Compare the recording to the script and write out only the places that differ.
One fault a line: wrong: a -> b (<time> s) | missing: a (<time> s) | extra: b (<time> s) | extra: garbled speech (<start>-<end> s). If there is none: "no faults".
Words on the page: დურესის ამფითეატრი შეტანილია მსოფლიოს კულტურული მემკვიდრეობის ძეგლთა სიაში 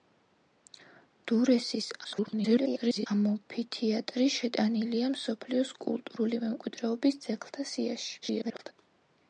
extra: garbled speech (2.0-3.1 s)
extra: garbled speech (8.2-8.7 s)